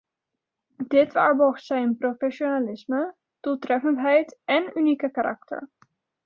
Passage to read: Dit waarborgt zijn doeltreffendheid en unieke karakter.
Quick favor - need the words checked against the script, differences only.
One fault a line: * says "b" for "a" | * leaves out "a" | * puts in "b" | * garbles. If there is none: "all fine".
* puts in "professionalisme"